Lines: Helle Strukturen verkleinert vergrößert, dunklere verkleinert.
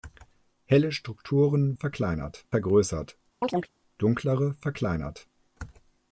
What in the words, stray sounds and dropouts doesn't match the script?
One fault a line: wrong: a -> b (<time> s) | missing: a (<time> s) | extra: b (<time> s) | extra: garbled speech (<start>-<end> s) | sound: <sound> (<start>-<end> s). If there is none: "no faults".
sound: chirp (3.4-3.7 s)